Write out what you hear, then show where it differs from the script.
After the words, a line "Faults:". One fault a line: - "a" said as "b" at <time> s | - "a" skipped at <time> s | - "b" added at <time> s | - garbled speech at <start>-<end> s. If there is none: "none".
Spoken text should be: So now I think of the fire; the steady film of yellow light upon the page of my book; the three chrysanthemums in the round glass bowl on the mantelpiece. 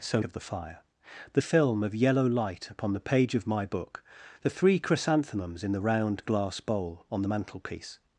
So of the fire; the film of yellow light upon the page of my book; the three chrysanthemums in the round glass bowl on the mantelpiece.
Faults:
- "now I think" skipped at 0.2 s
- "steady" skipped at 1.4 s